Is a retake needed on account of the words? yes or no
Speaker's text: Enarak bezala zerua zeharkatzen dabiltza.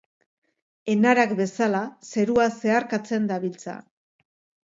no